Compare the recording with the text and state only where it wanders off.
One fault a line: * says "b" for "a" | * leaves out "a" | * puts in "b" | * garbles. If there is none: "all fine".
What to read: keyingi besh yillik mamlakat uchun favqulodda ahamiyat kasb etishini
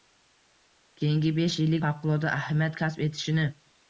* leaves out "mamlakat uchun"